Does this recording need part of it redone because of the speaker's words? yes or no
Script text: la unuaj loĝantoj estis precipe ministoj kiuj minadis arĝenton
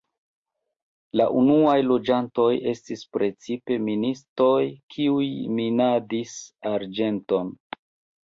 no